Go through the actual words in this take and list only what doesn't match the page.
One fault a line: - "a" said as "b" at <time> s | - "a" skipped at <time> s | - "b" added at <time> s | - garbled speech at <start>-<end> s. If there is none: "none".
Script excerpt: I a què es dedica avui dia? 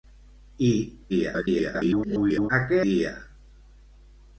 - garbled speech at 1.1-2.5 s
- "es dedica avui" skipped at 2.8 s